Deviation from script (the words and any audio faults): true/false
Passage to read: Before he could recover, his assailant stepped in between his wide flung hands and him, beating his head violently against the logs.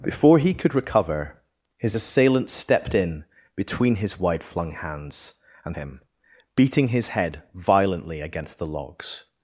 false